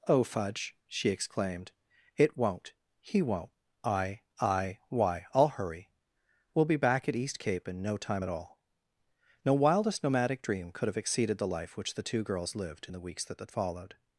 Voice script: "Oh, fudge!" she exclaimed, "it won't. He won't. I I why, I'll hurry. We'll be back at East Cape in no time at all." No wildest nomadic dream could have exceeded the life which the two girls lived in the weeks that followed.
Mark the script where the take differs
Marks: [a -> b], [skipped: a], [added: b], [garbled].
"Oh, fudge!" she exclaimed, "it won't. He won't. I I why, I'll hurry. We'll be back at East Cape in no time at all." No wildest nomadic dream could have exceeded the life which the two girls lived in the weeks that [added: that] followed.